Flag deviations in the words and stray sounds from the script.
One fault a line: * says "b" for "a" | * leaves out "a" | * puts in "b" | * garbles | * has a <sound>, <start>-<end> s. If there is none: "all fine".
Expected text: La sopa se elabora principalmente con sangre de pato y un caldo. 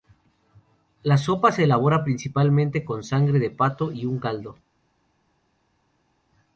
all fine